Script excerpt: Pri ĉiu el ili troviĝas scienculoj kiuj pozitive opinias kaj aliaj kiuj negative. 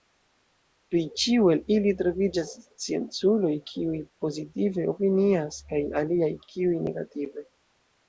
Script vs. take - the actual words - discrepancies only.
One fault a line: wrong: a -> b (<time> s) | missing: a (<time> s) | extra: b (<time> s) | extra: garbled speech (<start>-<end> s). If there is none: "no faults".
no faults